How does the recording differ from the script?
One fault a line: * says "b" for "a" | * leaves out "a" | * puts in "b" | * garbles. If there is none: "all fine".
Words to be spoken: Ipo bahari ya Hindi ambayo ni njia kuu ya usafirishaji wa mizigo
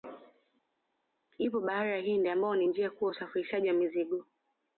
all fine